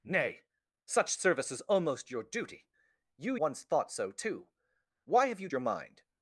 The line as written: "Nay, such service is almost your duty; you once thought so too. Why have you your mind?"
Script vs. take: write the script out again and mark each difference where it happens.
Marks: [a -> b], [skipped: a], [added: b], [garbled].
"Nay, such service is almost your duty; you once thought so too. Why have you your mind?"